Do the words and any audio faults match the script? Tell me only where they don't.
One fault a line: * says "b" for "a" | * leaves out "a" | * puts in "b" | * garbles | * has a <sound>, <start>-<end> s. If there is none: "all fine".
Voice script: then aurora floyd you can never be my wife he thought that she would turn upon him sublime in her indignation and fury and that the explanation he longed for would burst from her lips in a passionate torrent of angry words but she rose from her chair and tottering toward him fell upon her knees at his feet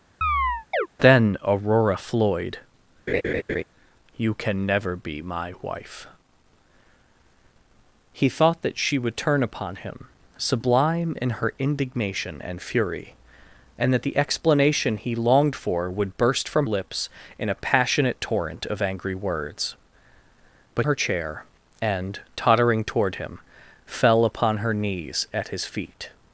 * has a chirp, 0.2-0.9 s
* has a laugh, 3.1-3.6 s
* leaves out "her"
* leaves out "she rose from"